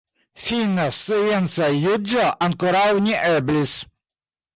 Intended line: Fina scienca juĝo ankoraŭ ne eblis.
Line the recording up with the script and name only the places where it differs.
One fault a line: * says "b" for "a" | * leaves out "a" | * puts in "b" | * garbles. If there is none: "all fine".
all fine